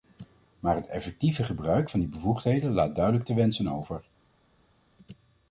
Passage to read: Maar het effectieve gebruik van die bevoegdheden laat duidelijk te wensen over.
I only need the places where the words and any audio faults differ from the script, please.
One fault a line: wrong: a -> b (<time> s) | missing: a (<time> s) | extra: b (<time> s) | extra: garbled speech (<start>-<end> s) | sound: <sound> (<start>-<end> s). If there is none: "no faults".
no faults